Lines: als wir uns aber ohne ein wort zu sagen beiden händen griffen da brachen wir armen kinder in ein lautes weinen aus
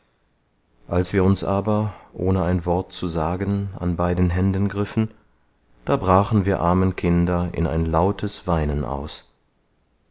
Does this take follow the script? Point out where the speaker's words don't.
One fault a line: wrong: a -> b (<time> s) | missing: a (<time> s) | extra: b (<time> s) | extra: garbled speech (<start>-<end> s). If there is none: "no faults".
extra: an (3.8 s)